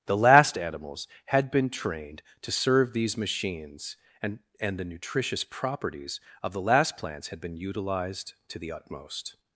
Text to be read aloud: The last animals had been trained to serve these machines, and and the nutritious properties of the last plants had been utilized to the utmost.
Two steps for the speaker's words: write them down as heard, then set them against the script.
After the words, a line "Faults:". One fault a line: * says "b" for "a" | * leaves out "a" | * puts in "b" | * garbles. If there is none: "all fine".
The last animals had been trained to serve these machines, and and the nutritious properties of the last plants had been utilized to the utmost.
Faults:
all fine